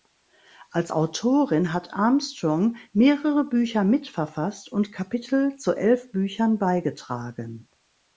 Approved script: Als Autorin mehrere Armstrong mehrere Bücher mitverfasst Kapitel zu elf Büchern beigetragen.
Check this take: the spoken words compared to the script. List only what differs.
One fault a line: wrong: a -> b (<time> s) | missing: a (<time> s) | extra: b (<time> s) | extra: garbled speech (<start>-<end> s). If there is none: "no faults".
wrong: mehrere -> hat (1.7 s)
extra: und (4.7 s)